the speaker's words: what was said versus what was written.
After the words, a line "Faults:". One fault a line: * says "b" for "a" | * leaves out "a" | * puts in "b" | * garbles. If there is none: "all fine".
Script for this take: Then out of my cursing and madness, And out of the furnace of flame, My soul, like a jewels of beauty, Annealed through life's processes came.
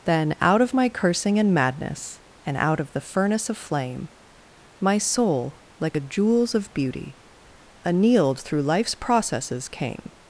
Then out of my cursing and madness, And out of the furnace of flame, My soul, like a jewels of beauty, Annealed through life's processes came.
Faults:
all fine